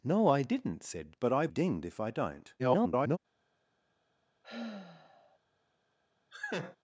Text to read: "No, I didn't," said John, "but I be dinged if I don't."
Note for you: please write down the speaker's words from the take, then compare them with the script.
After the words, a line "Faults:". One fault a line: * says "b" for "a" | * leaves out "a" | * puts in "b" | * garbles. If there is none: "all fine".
"No, I didn't," said "But I dinged if I don't." [garbled]
Faults:
* leaves out "John"
* leaves out "be"
* garbles